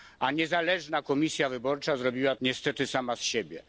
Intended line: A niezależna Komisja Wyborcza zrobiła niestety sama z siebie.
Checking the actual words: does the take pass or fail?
pass